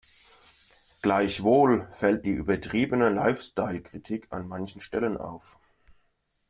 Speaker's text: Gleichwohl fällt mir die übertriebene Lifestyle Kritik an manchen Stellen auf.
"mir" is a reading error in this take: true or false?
true